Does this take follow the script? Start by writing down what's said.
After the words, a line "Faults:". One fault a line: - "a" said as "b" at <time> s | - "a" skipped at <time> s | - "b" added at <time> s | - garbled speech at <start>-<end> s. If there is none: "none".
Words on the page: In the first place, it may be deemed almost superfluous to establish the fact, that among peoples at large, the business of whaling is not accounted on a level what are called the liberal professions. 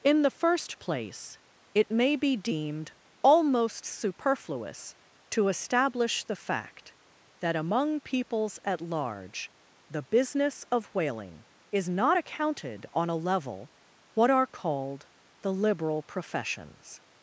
In the first place, it may be deemed almost superfluous to establish the fact, that among peoples at large, the business of whaling is not accounted on a level what are called the liberal professions.
Faults:
none